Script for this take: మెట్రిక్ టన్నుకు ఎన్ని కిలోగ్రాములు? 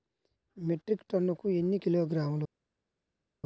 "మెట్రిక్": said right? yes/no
yes